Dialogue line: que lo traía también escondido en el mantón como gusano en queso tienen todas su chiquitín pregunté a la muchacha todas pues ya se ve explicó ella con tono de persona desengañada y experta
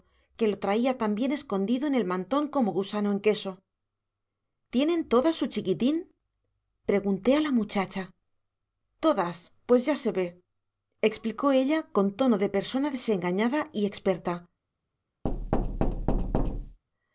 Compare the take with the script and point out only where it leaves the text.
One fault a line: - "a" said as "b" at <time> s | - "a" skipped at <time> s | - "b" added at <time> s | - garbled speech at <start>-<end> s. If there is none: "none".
none